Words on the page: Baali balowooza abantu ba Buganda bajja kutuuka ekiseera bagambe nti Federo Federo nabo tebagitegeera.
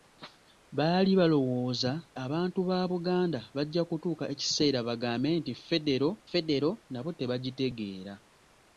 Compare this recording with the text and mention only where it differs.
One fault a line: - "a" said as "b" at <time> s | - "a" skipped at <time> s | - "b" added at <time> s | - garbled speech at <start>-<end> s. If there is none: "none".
none